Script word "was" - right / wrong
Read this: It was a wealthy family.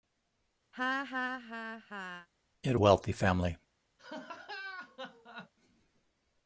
wrong